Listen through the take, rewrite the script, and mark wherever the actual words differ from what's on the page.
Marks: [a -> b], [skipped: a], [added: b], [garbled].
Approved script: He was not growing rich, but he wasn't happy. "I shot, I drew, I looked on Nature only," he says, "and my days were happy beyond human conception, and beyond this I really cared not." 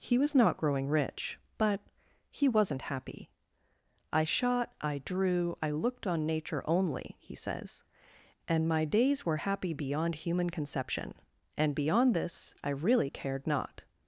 He was not growing rich, but he wasn't happy. "I shot, I drew, I looked on Nature only," he says, "and my days were happy beyond human conception, and beyond this I really cared not."